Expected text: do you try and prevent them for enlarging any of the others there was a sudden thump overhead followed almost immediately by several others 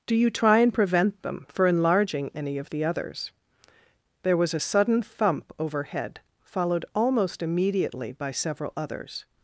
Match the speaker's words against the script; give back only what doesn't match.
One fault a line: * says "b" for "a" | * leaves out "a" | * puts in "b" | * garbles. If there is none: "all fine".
all fine